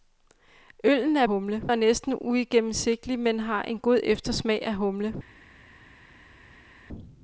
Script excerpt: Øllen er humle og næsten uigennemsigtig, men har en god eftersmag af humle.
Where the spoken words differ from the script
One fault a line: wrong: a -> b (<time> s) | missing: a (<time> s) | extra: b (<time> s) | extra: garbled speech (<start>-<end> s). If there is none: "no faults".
no faults